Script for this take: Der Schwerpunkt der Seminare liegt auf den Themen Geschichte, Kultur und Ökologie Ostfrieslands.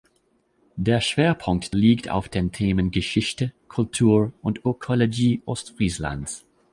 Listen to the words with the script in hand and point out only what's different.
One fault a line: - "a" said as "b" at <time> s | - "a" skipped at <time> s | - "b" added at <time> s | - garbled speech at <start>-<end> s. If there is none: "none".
- "der Seminare" skipped at 1.8 s